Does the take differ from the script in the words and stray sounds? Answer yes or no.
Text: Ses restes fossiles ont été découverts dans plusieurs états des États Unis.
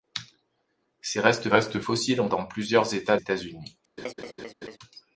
yes